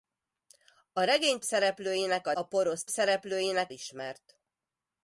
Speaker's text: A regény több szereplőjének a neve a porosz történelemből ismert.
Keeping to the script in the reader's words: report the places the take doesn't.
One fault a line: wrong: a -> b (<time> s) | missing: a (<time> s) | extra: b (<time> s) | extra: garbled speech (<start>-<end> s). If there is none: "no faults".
missing: több (1.4 s)
missing: neve (2.3 s)
wrong: történelemből -> szereplőjének (2.9 s)